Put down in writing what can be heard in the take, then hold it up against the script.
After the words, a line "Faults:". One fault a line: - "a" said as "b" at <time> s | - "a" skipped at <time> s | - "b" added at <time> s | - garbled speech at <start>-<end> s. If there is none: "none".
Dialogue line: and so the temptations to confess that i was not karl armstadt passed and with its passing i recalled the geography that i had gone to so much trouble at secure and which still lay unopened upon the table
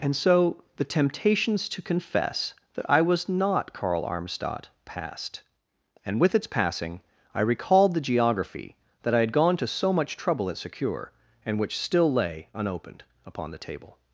and so the temptations to confess that i was not karl armstadt passed and with its passing i recalled the geography that i had gone to so much trouble at secure and which still lay unopened upon the table
Faults:
none